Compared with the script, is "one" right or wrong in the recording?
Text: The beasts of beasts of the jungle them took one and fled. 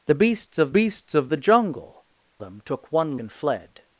right